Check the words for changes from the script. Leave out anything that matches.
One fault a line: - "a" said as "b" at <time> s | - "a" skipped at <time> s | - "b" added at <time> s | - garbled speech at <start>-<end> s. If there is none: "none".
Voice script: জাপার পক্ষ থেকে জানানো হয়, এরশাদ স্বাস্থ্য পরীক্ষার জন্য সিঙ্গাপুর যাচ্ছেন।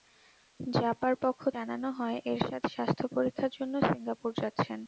- "থেকে" skipped at 1.4 s